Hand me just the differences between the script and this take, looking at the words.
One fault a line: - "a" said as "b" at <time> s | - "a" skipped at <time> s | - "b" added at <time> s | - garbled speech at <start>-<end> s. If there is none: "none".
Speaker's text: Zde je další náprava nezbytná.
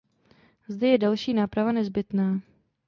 none